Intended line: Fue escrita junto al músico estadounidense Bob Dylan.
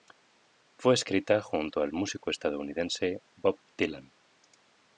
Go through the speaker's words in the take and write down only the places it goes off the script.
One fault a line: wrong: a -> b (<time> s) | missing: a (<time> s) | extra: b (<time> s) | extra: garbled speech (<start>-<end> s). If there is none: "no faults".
no faults